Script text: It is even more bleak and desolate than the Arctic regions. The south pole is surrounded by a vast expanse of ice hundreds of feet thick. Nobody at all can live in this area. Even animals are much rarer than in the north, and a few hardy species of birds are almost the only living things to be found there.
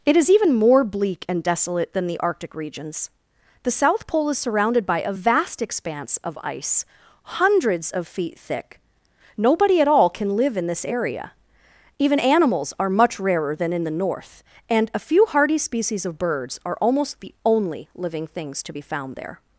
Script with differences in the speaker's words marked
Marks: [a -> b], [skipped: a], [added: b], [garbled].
It is even more bleak and desolate than the Arctic regions. The south pole is surrounded by a vast expanse of ice hundreds of feet thick. Nobody at all can live in this area. Even animals are much rarer than in the north, and a few hardy species of birds are almost the only living things to be found there.